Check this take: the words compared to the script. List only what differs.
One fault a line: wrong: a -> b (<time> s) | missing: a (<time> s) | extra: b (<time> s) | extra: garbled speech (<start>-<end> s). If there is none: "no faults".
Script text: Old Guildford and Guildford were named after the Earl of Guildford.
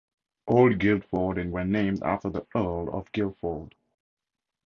missing: Guildford (1.5 s)